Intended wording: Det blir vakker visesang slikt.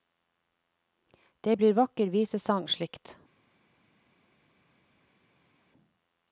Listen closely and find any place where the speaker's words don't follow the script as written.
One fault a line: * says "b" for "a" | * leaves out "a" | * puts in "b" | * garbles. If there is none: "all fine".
all fine